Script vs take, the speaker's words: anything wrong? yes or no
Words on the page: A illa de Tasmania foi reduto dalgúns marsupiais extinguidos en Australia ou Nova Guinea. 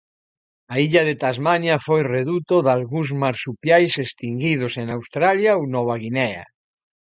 no